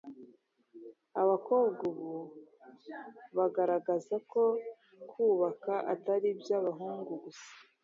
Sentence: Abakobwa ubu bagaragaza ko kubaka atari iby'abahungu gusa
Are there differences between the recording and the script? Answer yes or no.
no